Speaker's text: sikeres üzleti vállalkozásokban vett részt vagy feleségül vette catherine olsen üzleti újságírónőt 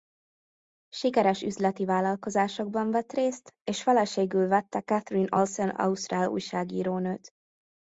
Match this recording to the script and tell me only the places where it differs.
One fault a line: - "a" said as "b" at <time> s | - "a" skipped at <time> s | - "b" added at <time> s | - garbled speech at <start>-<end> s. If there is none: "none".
- "vagy" said as "és" at 3.6 s
- "üzleti" said as "ausztrál" at 5.7 s